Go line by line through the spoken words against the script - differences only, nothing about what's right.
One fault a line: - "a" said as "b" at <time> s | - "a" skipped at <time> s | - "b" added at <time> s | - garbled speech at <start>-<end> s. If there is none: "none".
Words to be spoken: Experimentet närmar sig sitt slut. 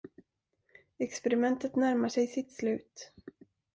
none